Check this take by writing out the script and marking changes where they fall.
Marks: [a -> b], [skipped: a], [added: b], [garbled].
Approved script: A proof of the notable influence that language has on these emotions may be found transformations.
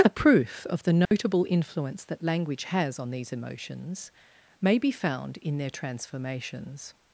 A proof of the notable influence that language has on these emotions may be found [added: in their] transformations.